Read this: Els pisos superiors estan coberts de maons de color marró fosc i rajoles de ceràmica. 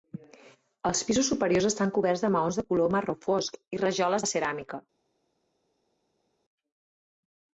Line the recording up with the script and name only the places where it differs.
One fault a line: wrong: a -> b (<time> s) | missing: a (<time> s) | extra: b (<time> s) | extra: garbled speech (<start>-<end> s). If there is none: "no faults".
no faults